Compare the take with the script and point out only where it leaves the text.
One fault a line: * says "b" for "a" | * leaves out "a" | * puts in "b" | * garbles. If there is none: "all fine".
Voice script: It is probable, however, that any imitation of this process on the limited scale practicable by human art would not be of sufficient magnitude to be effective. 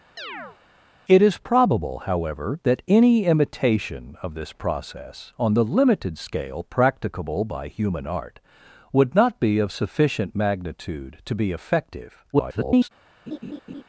* garbles